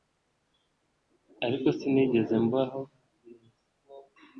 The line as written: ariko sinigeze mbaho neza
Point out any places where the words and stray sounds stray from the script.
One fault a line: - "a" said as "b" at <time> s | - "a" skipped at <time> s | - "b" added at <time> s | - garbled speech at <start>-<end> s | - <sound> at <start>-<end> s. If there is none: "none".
none